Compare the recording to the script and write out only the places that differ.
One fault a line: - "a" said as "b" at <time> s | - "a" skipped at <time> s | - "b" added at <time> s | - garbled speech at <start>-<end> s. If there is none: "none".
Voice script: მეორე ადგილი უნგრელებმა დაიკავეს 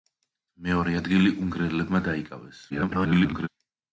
- garbled speech at 2.7-3.5 s